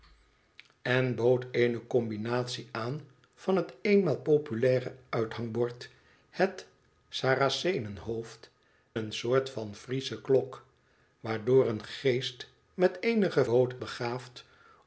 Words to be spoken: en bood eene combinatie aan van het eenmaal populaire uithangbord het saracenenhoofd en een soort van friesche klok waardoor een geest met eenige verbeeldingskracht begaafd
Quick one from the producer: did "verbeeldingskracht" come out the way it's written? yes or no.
no